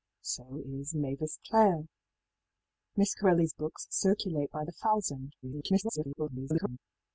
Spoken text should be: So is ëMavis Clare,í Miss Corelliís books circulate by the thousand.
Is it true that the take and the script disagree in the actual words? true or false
true